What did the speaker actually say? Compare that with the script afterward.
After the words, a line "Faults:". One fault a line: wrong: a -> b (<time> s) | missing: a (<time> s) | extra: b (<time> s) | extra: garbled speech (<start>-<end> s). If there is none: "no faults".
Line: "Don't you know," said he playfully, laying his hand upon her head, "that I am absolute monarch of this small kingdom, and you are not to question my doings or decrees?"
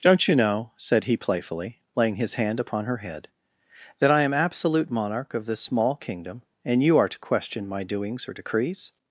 "Don't you know," said he playfully, laying his hand upon her head, "that I am absolute monarch of this small kingdom, and you are to question my doings or decrees?"
Faults:
missing: not (7.1 s)